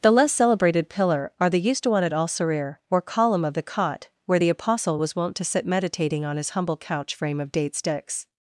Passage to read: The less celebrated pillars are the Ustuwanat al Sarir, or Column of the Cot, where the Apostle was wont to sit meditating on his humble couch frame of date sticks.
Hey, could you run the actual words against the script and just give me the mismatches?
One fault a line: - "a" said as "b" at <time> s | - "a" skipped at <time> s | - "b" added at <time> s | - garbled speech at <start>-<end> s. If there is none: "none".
- "pillars" said as "pillar" at 0.9 s